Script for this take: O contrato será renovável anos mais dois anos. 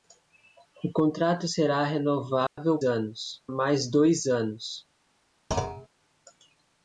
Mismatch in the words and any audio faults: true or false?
true